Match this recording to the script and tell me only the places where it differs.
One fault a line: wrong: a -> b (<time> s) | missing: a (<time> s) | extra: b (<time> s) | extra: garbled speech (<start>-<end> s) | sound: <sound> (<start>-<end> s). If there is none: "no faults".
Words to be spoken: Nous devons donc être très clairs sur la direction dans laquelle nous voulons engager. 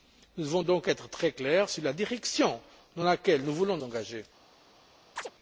sound: chirp (5.2-5.3 s)